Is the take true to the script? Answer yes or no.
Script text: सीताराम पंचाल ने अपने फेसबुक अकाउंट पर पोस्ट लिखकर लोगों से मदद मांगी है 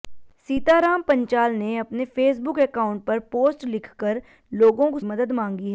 no